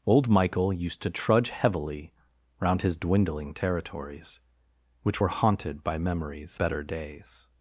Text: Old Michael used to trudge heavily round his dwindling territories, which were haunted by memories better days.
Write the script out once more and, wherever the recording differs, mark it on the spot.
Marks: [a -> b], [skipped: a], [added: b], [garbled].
Old Michael used to trudge heavily round his dwindling territories, which were haunted by memories better days.